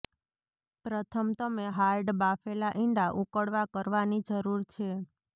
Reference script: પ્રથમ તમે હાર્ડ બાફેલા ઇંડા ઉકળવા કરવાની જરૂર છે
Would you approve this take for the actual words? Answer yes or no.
yes